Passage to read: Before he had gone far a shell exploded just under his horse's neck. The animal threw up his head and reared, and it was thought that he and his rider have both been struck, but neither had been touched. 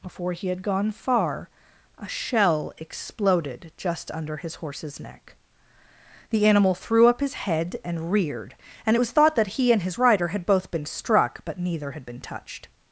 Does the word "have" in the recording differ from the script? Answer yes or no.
yes